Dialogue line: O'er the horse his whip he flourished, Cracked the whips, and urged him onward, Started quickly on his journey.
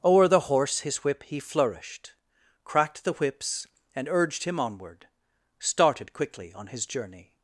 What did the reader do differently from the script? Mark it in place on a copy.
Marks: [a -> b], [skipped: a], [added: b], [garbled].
O'er the horse his whip he flourished, Cracked the whips, and urged him onward, Started quickly on his journey.